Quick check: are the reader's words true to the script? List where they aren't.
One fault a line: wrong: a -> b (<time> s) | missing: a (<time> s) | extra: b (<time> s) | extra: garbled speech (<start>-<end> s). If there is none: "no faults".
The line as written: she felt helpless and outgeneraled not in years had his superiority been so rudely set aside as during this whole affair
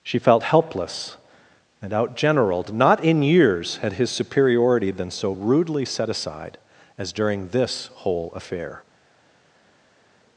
no faults